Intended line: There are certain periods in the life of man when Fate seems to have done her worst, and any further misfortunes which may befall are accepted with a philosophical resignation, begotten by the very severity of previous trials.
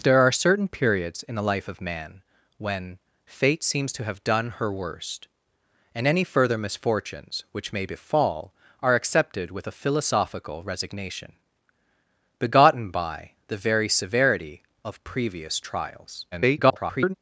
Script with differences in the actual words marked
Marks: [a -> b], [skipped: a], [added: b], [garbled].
There are certain periods in the life of man when Fate seems to have done her worst, and any further misfortunes which may befall are accepted with a philosophical resignation, begotten by the very severity of previous trials. [garbled]